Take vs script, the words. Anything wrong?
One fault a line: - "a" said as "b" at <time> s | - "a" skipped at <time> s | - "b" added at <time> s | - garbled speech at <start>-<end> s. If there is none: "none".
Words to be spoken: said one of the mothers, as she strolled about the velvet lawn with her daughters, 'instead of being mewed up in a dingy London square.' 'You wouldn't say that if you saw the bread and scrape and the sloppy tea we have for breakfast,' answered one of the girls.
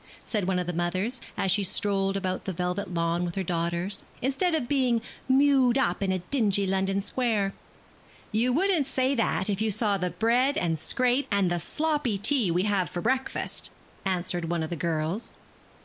none